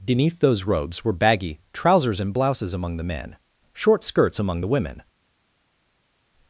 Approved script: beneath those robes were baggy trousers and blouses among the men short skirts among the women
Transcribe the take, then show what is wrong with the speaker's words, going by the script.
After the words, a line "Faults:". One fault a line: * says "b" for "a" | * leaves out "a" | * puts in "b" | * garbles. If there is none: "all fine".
beneath those robes were baggy trousers and blouses among the men short skirts among the women
Faults:
all fine